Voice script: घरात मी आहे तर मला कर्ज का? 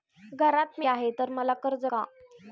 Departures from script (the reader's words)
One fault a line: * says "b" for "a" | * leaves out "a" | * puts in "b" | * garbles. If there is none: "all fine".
all fine